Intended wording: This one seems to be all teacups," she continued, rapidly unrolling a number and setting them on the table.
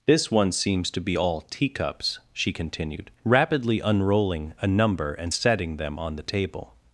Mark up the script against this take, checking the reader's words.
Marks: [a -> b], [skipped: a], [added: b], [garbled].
This one seems to be all teacups," she continued, rapidly unrolling a number and setting them on the table.